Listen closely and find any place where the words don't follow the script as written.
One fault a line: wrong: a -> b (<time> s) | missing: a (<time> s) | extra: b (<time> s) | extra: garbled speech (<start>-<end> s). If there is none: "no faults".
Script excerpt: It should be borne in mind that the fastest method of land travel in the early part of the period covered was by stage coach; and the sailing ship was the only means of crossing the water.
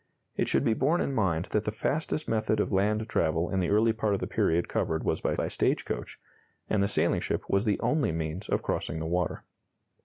extra: by (5.3 s)